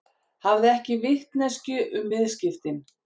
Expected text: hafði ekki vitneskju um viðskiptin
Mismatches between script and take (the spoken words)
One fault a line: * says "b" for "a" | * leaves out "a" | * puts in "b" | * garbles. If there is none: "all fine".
all fine